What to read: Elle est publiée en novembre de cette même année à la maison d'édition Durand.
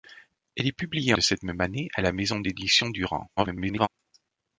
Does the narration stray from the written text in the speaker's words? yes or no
yes